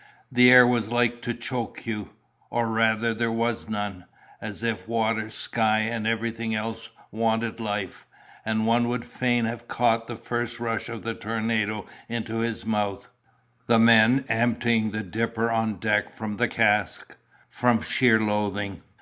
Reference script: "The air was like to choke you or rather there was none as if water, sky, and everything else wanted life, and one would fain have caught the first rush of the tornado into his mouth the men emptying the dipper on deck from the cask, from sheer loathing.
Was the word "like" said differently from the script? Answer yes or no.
no